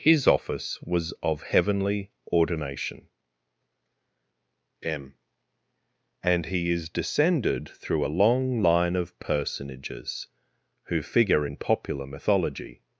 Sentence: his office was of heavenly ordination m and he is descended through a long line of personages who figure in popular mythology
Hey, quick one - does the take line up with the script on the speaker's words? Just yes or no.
yes